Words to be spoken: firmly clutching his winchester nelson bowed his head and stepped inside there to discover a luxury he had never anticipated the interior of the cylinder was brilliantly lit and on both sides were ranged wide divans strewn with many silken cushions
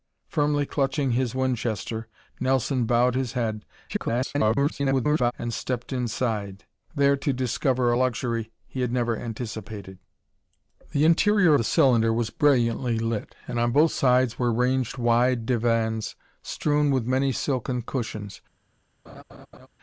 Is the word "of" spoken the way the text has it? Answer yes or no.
no